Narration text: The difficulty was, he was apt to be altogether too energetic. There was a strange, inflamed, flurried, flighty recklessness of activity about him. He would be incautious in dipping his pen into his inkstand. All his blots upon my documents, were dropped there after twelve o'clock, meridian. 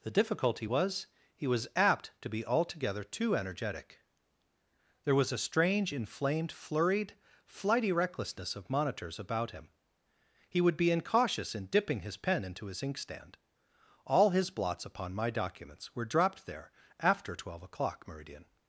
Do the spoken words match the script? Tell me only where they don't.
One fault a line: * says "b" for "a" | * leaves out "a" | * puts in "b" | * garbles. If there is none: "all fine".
* says "monitors" for "activity"